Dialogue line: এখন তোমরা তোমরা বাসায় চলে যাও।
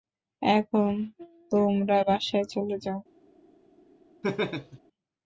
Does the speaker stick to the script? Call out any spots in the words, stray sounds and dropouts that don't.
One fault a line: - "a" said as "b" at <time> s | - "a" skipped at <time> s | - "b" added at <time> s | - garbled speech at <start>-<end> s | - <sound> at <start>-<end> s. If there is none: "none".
- "তোমরা" skipped at 2.0 s
- laugh at 4.2-4.8 s